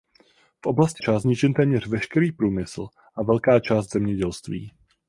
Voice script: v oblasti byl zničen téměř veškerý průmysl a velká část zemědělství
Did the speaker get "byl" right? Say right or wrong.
wrong